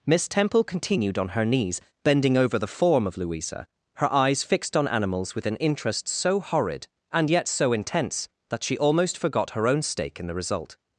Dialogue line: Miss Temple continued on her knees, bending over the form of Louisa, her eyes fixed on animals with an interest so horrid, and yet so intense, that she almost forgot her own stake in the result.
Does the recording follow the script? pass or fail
pass